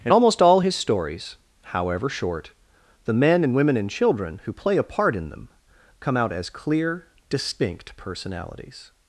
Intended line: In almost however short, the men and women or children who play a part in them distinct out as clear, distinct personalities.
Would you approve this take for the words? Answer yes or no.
no